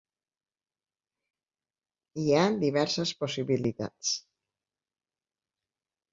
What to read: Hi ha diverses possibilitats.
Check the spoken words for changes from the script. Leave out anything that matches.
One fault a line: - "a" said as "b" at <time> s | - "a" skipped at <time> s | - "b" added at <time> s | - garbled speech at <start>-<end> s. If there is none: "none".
none